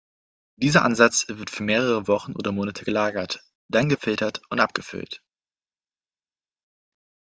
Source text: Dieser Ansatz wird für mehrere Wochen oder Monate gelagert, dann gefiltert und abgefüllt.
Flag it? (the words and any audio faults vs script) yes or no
no